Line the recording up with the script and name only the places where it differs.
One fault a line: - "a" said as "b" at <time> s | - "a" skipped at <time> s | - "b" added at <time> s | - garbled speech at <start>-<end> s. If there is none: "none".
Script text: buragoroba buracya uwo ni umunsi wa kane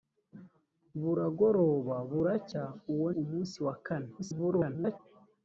- "ni" skipped at 3.1 s
- garbled speech at 4.2-5.0 s